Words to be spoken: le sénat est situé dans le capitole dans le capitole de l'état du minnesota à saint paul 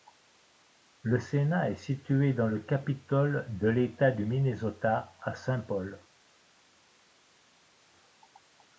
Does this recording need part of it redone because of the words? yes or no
yes